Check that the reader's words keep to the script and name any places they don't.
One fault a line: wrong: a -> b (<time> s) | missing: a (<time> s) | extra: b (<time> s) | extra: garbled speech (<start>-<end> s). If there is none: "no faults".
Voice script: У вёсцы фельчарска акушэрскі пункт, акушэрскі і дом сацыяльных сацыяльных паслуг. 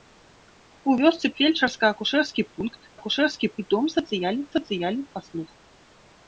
no faults